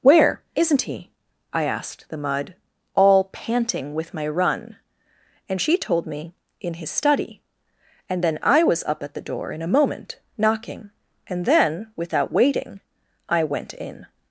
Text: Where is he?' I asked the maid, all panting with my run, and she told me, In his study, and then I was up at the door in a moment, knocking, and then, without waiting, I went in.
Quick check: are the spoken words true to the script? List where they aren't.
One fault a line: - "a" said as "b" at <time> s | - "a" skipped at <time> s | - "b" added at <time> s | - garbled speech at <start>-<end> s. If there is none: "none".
- "is" said as "isn't" at 0.6 s
- "maid" said as "mud" at 2.2 s